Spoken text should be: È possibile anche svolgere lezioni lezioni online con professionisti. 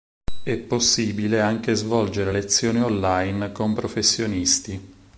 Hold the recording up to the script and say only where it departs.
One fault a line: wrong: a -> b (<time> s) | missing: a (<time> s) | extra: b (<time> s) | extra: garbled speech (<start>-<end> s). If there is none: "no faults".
missing: lezioni (2.8 s)